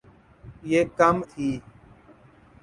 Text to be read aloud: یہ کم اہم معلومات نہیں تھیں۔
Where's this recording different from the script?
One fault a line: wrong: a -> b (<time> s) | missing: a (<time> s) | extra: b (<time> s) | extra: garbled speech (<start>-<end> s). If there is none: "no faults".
missing: اہم معلومات نہیں (1.1 s)